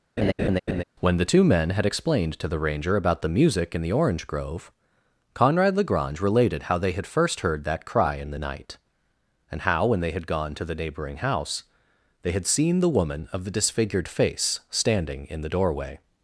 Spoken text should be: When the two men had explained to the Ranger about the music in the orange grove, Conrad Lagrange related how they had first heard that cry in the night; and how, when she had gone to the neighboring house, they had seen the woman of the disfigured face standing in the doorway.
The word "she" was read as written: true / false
false